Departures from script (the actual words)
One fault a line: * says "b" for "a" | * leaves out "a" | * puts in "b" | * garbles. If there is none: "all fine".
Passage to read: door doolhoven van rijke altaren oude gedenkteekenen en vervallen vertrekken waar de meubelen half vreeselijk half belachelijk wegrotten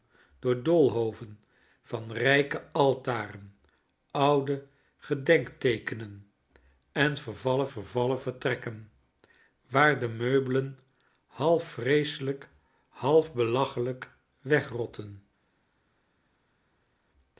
* puts in "vervallen"